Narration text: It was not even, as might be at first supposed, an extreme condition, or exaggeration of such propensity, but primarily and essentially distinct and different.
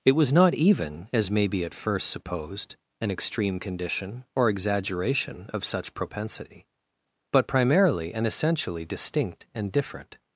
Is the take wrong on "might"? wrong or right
wrong